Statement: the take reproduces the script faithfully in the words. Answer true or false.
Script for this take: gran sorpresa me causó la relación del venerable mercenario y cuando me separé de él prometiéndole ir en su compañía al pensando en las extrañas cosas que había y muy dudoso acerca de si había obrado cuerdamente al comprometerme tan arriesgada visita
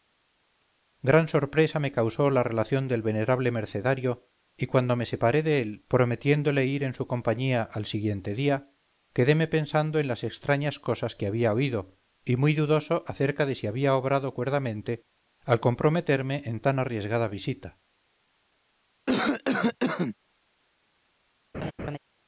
false